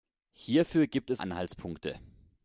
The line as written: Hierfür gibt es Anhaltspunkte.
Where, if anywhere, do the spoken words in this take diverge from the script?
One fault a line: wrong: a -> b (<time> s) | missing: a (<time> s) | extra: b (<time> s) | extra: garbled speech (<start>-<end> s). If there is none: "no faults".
no faults